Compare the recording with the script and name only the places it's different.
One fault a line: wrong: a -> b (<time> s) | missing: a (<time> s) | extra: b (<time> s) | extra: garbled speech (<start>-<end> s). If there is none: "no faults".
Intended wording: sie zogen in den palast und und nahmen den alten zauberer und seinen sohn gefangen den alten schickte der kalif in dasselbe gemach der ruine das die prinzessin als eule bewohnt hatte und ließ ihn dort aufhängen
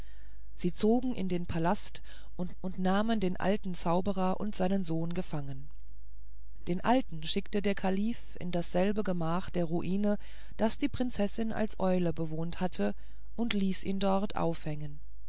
no faults